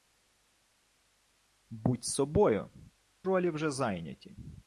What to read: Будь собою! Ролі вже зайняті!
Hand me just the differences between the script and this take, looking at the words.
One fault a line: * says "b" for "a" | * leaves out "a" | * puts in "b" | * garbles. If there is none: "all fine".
all fine